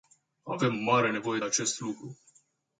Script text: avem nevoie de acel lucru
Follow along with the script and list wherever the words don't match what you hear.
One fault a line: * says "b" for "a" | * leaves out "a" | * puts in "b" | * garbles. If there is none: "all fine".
* puts in "mare"
* says "acest" for "acel"